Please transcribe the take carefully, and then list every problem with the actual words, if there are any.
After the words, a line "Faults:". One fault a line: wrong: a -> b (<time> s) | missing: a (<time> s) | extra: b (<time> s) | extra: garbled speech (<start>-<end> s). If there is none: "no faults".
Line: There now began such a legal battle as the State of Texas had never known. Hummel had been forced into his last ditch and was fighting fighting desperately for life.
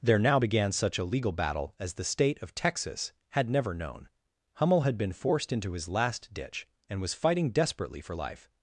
There now began such a legal battle as the State of Texas had never known. Hummel had been forced into his last ditch and was fighting desperately for life.
Faults:
missing: fighting (7.5 s)